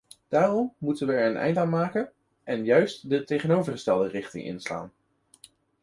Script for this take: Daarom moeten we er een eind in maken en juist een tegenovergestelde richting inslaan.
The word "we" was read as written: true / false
true